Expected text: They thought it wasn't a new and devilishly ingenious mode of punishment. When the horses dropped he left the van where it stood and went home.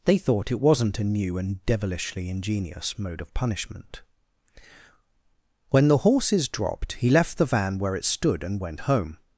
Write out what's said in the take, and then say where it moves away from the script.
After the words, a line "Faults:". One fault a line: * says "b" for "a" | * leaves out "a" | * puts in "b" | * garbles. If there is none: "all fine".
They thought it wasn't a new and devilishly ingenious mode of punishment. When the horses dropped he left the van where it stood and went home.
Faults:
all fine